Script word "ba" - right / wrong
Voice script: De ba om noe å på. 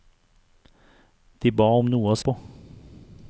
right